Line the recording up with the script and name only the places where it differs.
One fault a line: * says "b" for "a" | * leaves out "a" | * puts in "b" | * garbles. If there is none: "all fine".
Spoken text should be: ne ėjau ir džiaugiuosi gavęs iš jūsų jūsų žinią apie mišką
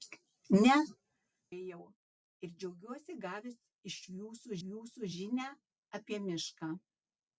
all fine